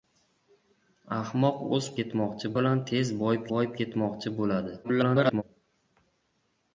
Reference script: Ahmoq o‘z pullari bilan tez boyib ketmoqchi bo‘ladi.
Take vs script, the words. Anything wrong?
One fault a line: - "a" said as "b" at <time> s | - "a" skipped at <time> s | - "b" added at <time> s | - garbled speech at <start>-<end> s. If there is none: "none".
- "pullari" said as "ketmoqchi" at 2.0 s
- "boyib" added at 3.5 s
- garbled speech at 4.8-5.4 s